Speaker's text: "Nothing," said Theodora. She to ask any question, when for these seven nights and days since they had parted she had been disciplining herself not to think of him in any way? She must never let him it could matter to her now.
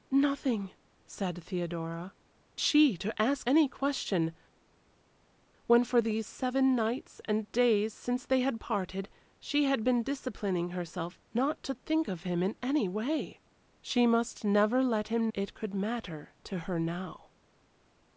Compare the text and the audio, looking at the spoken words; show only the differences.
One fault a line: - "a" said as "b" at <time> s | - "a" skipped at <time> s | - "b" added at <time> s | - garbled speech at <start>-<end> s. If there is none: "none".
none